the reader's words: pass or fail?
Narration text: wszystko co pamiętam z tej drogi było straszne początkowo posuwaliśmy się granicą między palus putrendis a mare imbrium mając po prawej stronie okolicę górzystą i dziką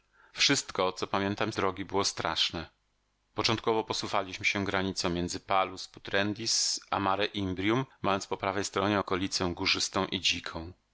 fail